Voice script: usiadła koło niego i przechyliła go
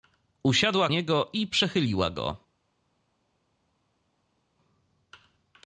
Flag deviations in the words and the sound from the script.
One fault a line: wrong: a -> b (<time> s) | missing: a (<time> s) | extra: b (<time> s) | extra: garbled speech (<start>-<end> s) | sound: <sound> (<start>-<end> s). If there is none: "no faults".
missing: koło (0.9 s)